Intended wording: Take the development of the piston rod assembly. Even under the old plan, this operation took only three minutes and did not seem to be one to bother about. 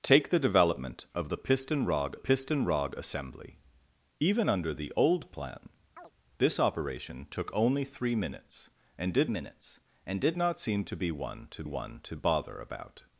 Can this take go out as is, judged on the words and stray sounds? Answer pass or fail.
fail